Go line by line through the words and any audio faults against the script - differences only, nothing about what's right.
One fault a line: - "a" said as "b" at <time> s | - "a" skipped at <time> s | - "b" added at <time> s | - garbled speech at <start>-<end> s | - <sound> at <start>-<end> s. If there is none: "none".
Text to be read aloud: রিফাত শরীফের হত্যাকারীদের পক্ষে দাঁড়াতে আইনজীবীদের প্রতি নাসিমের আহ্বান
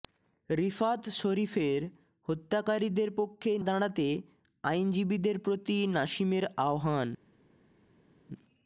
none